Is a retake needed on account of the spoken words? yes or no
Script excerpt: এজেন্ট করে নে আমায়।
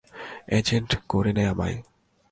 no